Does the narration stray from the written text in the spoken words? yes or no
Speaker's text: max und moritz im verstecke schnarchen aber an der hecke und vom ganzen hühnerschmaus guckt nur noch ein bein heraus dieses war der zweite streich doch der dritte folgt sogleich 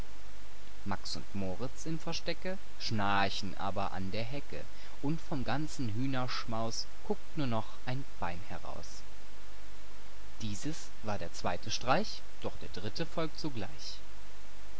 no